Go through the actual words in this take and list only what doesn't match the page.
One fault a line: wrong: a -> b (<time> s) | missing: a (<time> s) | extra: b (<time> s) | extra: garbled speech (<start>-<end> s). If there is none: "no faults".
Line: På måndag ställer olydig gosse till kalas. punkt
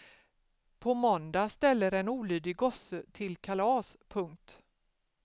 extra: en (1.9 s)